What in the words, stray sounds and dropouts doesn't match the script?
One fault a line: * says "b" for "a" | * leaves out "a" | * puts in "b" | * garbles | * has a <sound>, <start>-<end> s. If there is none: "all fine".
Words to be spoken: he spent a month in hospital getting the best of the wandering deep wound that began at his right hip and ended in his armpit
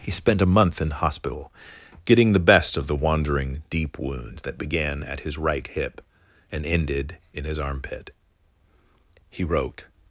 * puts in "he wrote"